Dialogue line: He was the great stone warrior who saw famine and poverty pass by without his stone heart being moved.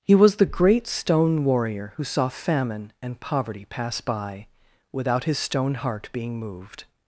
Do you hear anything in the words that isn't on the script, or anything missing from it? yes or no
no